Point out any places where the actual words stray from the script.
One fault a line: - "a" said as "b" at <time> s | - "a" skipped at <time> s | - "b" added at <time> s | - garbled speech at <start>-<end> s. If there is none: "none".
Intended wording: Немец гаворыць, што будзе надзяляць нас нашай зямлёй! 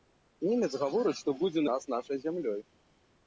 - "надзяляць" skipped at 1.6 s